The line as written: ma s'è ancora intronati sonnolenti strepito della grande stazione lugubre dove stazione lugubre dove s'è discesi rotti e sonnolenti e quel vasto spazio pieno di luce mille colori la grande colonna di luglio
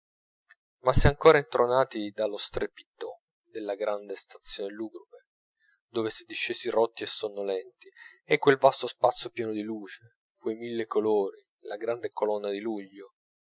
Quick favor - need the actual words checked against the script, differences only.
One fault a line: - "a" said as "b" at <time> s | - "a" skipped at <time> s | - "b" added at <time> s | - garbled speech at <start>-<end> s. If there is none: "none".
- "sonnolenti" said as "dallo" at 2.1 s
- "stazione lugubre dove" skipped at 6.1 s
- "quei" added at 10.3 s